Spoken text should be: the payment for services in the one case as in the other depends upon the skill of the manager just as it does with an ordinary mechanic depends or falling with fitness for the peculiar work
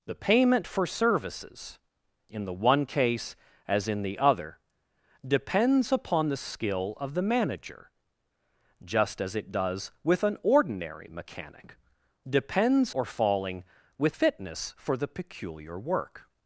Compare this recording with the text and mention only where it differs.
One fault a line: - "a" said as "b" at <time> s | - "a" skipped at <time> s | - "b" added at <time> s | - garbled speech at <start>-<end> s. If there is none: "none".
none